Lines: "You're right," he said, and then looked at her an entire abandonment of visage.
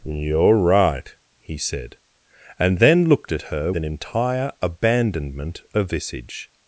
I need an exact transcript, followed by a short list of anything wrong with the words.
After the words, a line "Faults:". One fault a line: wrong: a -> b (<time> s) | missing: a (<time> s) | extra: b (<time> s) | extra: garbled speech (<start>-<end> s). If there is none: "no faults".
"You're right," he said, and then looked at her an entire abandonment of visage.
Faults:
no faults